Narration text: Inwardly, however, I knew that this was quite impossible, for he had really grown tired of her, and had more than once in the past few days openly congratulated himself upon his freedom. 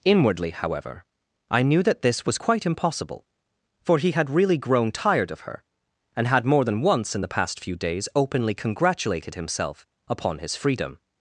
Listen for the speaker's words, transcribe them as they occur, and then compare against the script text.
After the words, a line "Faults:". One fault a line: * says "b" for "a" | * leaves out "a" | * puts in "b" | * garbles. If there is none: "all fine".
Inwardly, however, I knew that this was quite impossible, for he had really grown tired of her, and had more than once in the past few days openly congratulated himself upon his freedom.
Faults:
all fine